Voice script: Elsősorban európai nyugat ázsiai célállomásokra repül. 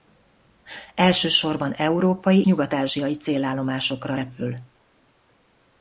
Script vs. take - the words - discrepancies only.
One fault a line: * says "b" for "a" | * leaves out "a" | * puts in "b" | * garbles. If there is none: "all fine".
all fine